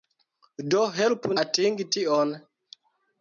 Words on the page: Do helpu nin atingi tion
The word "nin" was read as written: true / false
false